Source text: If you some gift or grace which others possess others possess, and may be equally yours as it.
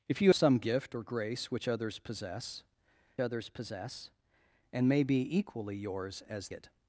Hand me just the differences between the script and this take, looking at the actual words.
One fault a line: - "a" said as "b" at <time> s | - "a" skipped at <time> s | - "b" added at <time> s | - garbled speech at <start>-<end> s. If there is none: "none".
none